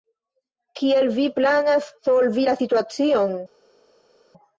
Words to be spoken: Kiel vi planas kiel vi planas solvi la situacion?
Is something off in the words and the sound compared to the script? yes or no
yes